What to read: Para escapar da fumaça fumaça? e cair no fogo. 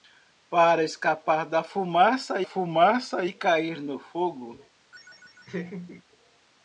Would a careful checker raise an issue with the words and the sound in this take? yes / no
yes